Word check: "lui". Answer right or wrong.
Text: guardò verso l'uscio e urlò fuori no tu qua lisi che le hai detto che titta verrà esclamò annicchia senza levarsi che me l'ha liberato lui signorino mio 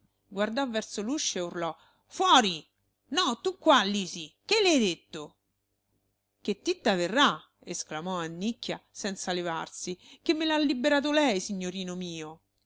wrong